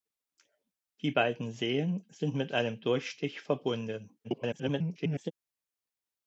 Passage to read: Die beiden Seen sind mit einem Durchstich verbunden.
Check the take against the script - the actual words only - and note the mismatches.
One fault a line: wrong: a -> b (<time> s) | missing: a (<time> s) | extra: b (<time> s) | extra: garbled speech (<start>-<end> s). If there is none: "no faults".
extra: garbled speech (4.2-5.3 s)